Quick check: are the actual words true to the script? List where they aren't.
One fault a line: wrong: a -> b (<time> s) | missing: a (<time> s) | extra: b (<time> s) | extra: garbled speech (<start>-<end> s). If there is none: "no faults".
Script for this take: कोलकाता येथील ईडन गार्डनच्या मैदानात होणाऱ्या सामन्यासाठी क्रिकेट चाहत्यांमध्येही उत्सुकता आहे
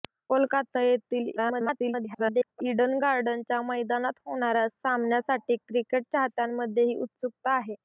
extra: garbled speech (1.4-2.6 s)